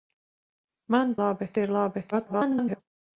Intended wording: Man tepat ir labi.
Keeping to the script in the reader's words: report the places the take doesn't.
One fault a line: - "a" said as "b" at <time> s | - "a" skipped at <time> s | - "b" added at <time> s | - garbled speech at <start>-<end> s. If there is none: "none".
- "tepat" said as "labi" at 1.2 s
- garbled speech at 2.1-2.8 s